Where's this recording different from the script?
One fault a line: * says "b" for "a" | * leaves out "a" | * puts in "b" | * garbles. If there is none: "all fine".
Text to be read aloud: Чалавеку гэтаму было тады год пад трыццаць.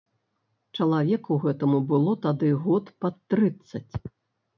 all fine